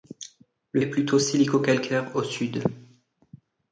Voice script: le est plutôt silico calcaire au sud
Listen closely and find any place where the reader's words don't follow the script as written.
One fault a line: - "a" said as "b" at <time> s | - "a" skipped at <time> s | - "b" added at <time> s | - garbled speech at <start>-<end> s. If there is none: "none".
none